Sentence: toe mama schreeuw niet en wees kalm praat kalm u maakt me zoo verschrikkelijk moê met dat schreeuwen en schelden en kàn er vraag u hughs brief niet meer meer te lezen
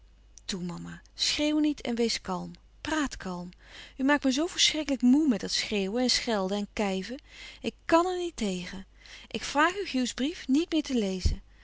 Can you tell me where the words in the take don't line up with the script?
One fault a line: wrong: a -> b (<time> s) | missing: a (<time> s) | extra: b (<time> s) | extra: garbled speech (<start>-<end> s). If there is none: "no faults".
extra: kijven ik (6.7 s)
extra: niet tegen ik (8.2 s)
missing: meer (10.8 s)